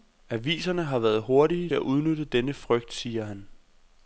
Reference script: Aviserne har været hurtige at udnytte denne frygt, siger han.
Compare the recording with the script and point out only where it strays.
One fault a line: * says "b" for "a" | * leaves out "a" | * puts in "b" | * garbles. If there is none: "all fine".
all fine